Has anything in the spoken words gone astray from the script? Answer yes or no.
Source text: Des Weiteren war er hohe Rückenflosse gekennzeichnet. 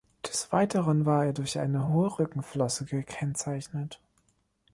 yes